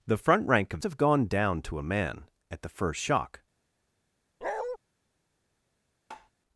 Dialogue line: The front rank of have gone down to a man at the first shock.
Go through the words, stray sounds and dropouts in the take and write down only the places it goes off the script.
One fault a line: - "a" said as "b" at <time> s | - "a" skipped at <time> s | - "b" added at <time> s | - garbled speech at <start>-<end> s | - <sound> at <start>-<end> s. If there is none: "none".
- bark at 4.4-4.8 s
- tap at 6.1-6.3 s